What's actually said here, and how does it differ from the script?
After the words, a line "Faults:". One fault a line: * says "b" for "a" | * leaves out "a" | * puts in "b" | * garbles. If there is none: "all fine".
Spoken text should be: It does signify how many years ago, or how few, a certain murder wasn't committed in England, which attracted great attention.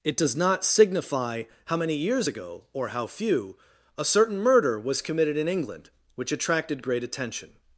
It does not signify how many years ago, or how few, a certain murder was committed in England, which attracted great attention.
Faults:
* puts in "not"
* says "was" for "wasn't"